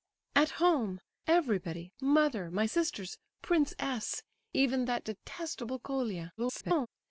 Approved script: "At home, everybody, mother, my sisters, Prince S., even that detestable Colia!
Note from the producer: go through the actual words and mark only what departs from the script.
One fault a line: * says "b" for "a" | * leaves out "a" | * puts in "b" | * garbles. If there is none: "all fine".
* garbles